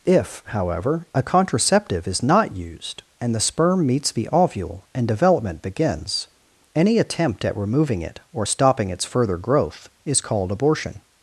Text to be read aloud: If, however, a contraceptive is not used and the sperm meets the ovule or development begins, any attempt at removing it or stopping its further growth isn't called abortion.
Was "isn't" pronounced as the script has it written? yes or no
no